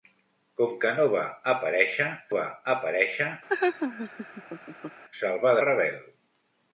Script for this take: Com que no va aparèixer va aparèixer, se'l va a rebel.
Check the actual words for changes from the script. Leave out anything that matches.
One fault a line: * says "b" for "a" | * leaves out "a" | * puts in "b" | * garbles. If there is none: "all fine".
all fine